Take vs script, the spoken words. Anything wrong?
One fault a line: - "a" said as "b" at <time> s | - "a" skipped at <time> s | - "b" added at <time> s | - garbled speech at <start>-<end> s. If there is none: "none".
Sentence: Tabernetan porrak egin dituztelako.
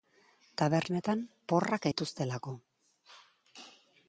- "egin" skipped at 1.9 s